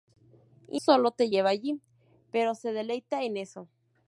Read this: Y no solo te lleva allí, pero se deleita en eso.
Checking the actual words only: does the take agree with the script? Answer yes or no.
no